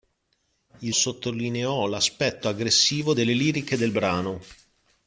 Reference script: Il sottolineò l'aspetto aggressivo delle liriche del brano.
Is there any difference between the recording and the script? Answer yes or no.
no